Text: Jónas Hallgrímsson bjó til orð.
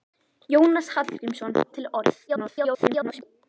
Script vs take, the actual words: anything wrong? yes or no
yes